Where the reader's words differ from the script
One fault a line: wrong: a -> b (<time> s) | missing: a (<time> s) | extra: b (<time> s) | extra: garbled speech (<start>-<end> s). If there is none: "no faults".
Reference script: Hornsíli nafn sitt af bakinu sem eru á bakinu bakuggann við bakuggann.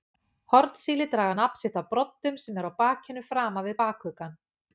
extra: draga (1.1 s)
wrong: bakinu -> broddum (1.9 s)
wrong: bakuggann -> framan (3.3 s)